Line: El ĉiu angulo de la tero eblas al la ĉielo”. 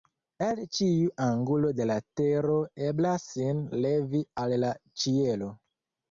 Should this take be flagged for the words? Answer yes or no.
yes